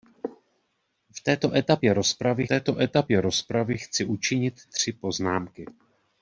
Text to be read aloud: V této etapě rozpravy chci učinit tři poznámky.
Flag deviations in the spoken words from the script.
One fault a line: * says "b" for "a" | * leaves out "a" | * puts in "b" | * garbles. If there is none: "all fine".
* puts in "této etapě rozpravy"